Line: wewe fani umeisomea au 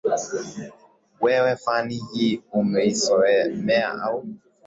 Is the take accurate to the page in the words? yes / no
no